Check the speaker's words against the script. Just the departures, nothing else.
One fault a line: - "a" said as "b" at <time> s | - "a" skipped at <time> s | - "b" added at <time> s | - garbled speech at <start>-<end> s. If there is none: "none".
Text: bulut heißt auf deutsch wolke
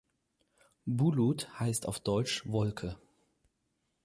none